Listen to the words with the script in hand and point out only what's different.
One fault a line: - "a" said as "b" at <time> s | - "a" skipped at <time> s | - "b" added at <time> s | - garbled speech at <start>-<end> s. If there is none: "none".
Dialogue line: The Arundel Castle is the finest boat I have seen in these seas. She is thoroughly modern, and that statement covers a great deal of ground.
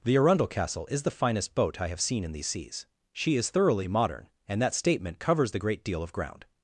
- "a" said as "the" at 5.5 s